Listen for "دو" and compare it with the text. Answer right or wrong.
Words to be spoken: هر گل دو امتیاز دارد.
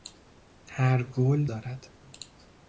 wrong